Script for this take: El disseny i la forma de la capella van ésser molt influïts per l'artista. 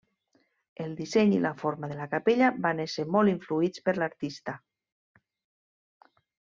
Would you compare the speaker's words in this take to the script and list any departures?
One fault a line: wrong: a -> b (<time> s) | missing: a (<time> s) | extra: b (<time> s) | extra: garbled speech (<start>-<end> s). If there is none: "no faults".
no faults